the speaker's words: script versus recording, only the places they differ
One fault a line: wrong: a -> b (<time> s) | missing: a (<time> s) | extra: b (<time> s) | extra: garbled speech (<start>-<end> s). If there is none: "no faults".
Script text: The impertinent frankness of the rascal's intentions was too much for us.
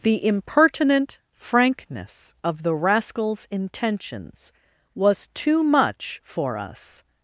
no faults